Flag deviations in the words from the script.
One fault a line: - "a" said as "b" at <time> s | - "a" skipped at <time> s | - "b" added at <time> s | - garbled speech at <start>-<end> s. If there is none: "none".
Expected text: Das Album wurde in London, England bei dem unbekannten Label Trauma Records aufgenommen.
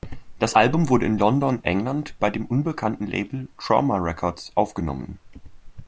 none